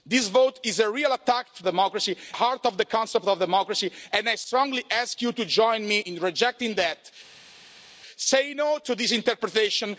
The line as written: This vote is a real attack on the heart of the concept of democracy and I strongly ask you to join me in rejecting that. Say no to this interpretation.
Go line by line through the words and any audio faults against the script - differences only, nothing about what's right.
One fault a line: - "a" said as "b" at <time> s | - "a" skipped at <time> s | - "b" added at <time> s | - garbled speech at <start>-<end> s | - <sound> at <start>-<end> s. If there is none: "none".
- "the" said as "democracy" at 1.6 s